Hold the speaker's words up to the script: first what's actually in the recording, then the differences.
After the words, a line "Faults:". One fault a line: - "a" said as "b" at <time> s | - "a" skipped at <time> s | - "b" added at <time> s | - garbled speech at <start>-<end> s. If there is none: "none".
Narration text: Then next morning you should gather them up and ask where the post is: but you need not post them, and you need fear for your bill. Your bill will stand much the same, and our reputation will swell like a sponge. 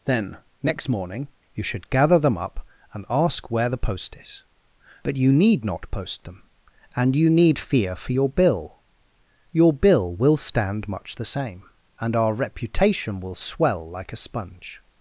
Then next morning you should gather them up and ask where the post is: but you need not post them, and you need fear for your bill. Your bill will stand much the same, and our reputation will swell like a sponge.
Faults:
none